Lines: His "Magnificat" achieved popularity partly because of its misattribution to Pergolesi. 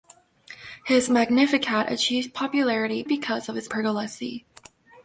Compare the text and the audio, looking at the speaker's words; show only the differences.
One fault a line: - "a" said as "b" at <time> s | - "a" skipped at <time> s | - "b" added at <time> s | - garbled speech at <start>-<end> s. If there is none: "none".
- "partly" skipped at 3.0 s
- "misattribution to" skipped at 3.7 s